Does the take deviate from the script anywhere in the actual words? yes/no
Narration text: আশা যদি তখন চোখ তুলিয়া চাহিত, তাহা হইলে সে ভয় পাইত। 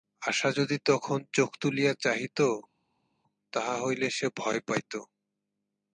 no